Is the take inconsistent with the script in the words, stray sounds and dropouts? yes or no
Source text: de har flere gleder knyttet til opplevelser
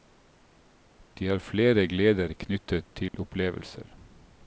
yes